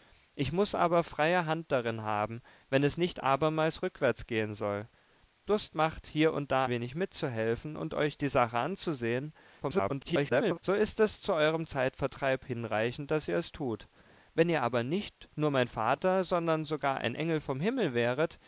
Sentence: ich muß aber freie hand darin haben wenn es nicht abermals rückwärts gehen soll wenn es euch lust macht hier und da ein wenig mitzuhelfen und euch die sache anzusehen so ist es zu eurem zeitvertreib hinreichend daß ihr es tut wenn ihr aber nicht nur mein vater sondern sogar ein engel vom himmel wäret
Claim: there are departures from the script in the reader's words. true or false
true